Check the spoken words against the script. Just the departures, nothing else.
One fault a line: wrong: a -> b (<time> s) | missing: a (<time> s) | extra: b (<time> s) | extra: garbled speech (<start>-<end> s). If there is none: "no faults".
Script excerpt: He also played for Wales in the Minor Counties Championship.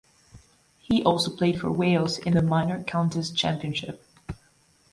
no faults